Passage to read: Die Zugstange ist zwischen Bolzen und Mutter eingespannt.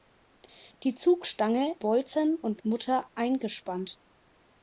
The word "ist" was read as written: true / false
false